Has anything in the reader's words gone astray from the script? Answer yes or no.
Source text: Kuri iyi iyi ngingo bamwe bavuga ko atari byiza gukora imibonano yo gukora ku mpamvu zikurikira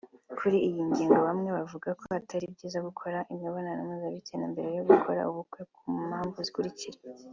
yes